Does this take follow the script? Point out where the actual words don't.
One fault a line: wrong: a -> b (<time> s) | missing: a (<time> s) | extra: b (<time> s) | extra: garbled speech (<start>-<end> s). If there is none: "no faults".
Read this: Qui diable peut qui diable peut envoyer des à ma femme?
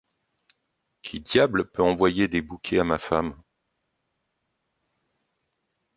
missing: qui diable peut (1.8 s)
extra: bouquets (2.4 s)